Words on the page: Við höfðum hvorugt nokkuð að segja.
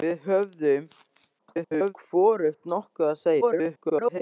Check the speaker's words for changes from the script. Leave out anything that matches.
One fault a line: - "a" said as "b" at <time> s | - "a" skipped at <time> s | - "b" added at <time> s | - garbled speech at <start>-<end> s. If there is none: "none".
- garbled speech at 1.4-1.9 s
- garbled speech at 3.4-4.2 s